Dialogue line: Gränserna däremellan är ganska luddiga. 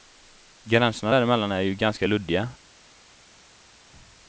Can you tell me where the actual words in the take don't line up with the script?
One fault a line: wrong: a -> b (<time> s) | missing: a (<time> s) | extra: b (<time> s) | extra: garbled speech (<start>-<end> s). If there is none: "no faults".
extra: ju (1.6 s)